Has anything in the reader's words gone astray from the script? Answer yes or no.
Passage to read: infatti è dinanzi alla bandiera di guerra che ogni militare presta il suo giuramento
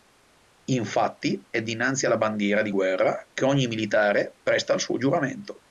no